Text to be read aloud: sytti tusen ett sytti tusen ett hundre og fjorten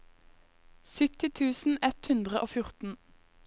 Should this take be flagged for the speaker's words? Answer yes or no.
yes